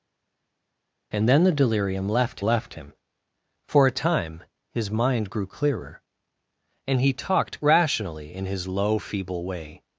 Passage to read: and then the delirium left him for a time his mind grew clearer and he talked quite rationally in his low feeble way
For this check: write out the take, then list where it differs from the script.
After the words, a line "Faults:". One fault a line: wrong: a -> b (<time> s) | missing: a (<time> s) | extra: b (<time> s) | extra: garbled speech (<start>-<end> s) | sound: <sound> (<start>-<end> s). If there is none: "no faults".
and then the delirium left left him for a time his mind grew clearer and he talked rationally in his low feeble way
Faults:
extra: left (2.4 s)
missing: quite (7.6 s)